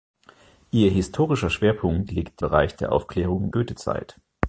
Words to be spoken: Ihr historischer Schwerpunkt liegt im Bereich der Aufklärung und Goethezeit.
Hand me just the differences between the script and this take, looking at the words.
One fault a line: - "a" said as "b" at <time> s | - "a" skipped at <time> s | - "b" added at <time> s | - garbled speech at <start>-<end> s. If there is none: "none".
- "im" skipped at 2.4 s
- "und" skipped at 3.5 s